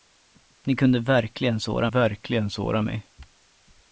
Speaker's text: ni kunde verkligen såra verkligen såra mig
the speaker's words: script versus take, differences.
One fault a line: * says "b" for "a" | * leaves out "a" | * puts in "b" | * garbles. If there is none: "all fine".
all fine